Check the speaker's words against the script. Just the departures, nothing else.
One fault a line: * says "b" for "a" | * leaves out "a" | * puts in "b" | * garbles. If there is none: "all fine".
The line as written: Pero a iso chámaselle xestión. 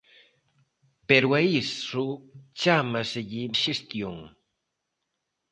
all fine